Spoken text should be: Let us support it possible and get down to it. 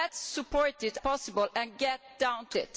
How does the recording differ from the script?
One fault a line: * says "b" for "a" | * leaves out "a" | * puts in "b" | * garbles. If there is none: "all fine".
all fine